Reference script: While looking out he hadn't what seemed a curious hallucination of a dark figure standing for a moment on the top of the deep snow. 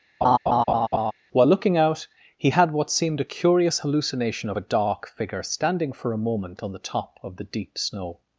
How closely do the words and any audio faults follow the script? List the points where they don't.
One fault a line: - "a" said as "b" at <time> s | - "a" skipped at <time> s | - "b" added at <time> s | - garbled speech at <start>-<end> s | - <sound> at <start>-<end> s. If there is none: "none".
- laugh at 0.2-1.1 s
- "hadn't" said as "had" at 2.5 s